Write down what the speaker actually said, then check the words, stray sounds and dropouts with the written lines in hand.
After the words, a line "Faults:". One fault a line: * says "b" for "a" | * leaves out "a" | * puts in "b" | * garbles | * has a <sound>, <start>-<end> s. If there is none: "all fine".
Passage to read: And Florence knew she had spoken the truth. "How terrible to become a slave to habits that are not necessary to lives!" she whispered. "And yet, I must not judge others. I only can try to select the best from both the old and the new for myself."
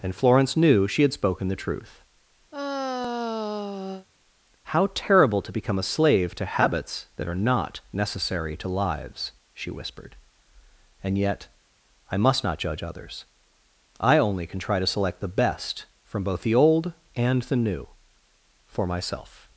And Florence knew she had spoken the truth. "How terrible to become a slave to habits that are not necessary to lives!" she whispered. "And yet, I must not judge others. I only can try to select the best from both the old and the new for myself."
Faults:
* has a sigh, 2.5-4.1 s